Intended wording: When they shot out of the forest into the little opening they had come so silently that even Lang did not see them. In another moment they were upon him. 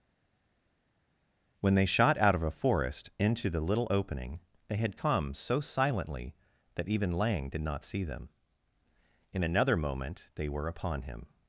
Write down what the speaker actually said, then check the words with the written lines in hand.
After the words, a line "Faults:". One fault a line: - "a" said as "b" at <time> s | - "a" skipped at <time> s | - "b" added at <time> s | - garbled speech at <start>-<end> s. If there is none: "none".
When they shot out of a forest into the little opening they had come so silently that even Lang did not see them. In another moment they were upon him.
Faults:
- "the" said as "a" at 2.4 s